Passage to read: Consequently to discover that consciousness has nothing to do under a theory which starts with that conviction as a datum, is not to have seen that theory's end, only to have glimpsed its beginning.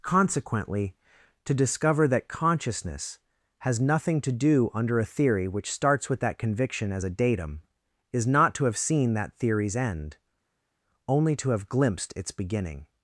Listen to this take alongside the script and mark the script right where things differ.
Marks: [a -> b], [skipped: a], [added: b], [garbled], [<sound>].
Consequently to discover that consciousness has nothing to do under a theory which starts with that conviction as a datum, is not to have seen that theory's end, only to have glimpsed its beginning.